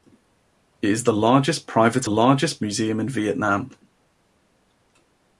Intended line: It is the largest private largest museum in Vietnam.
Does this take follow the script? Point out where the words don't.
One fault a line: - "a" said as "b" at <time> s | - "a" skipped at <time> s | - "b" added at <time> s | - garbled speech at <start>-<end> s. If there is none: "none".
none